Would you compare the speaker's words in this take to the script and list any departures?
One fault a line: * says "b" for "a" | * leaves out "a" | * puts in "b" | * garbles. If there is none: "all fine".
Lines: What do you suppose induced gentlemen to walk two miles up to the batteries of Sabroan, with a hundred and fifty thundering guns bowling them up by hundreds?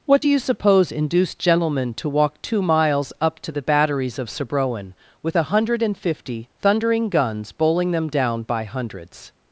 * says "down" for "up"